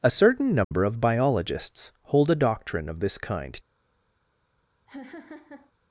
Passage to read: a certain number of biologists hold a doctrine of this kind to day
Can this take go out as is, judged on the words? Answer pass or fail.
fail